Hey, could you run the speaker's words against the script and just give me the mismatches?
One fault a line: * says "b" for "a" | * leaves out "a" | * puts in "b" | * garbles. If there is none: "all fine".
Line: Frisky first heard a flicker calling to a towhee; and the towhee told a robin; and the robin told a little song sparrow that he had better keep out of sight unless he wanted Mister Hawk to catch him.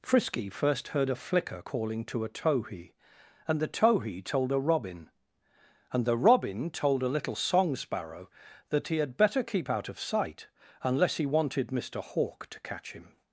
all fine